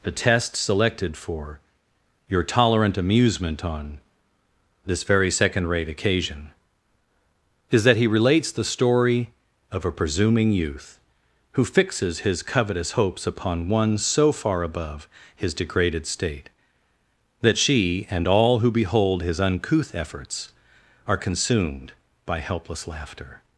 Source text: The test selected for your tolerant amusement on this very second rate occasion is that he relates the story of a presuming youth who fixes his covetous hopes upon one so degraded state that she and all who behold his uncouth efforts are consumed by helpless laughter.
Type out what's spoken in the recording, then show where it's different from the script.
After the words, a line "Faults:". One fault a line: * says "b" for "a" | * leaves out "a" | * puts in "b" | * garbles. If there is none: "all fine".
The test selected for your tolerant amusement on this very second rate occasion is that he relates the story of a presuming youth who fixes his covetous hopes upon one so far above his degraded state that she and all who behold his uncouth efforts are consumed by helpless laughter.
Faults:
* puts in "far above his"